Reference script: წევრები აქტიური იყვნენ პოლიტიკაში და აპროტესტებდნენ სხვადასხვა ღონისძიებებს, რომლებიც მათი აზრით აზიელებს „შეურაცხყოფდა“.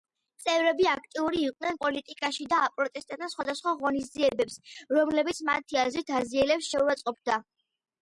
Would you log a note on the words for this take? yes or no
no